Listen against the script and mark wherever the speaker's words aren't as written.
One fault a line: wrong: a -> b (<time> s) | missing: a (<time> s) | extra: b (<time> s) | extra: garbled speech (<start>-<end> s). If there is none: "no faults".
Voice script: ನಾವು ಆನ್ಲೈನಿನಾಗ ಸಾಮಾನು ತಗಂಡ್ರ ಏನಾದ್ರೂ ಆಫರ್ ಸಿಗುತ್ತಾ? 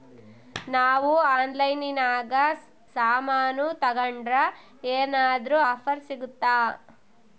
no faults